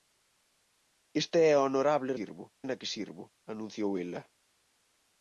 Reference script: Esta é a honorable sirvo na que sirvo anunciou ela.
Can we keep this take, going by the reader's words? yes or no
yes